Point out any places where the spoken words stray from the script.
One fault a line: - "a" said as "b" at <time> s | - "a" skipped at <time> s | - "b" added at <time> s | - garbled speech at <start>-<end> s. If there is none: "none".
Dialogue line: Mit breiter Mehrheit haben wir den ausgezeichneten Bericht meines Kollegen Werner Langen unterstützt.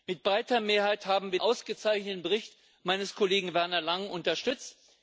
- "den" skipped at 1.4 s